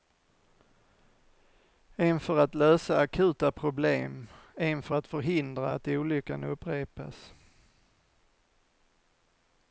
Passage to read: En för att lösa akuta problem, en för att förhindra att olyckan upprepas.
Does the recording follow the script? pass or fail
pass